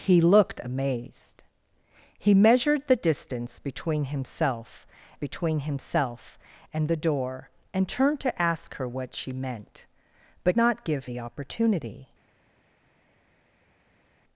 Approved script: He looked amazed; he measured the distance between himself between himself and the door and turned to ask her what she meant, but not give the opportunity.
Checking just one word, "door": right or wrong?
right